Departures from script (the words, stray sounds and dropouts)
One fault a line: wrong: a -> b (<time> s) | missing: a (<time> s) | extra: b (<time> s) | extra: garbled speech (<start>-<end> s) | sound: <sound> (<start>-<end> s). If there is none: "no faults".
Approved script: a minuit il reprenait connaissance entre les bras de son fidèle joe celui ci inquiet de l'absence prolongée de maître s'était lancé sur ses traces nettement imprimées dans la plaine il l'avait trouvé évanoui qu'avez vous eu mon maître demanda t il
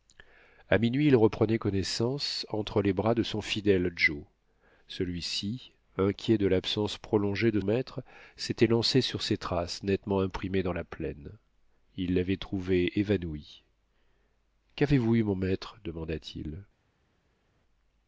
no faults